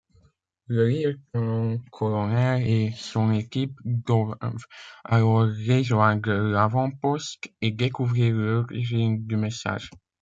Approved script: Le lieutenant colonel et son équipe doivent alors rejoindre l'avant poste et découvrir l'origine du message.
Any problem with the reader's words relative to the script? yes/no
no